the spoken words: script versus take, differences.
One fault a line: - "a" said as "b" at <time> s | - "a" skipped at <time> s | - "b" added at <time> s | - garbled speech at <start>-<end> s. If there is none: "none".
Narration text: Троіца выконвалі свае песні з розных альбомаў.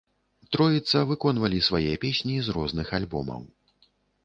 none